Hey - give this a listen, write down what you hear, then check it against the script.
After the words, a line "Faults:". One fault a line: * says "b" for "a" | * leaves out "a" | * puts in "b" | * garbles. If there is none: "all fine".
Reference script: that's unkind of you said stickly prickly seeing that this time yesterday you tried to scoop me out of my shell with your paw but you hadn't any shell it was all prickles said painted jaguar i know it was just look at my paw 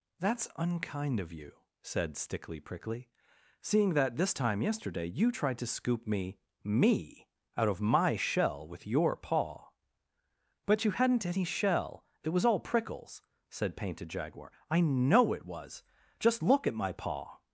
that's unkind of you said stickly prickly seeing that this time yesterday you tried to scoop me me out of my shell with your paw but you hadn't any shell it was all prickles said painted jaguar i know it was just look at my paw
Faults:
* puts in "me"